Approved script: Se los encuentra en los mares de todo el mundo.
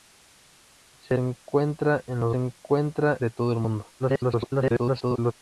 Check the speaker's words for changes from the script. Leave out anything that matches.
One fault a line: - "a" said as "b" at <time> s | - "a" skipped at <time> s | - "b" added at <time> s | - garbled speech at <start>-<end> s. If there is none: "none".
- "los" skipped at 1.2 s
- "mares" said as "encuentra" at 2.3 s
- garbled speech at 4.0-5.3 s